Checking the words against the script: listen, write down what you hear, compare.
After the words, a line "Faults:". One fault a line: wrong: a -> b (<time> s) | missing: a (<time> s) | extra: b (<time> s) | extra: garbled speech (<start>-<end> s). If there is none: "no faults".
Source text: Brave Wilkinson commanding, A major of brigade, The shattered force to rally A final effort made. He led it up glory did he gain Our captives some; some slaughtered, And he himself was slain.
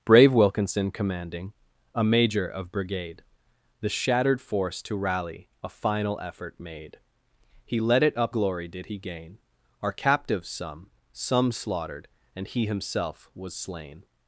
Brave Wilkinson commanding, A major of brigade, The shattered force to rally A final effort made. He led it up glory did he gain Our captives some; some slaughtered, And he himself was slain.
Faults:
no faults